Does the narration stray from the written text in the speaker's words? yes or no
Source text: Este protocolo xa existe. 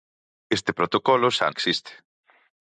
no